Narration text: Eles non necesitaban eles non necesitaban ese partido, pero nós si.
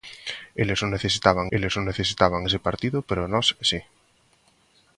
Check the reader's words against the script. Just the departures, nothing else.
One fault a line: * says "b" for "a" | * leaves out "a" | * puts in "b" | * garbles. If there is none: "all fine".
all fine